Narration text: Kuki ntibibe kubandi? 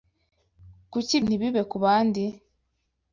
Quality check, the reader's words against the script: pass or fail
pass